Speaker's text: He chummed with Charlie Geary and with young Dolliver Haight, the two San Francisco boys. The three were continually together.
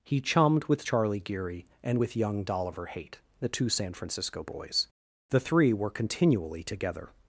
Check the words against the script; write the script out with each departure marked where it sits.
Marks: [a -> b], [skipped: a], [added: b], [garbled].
He chummed with Charlie Geary and with young Dolliver Haight, the two San Francisco boys. The three were continually together.